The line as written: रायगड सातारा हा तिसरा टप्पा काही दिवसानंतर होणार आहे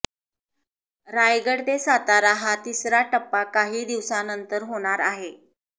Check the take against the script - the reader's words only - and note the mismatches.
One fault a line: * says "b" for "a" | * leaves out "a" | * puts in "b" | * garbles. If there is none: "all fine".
* puts in "ते"